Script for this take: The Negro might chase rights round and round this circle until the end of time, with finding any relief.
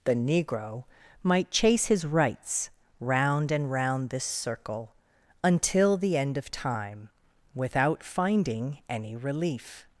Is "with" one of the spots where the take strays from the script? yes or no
yes